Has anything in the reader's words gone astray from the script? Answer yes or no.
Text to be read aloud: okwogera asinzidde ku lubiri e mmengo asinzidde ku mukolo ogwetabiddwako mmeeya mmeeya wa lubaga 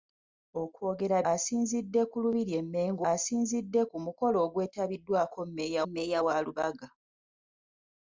no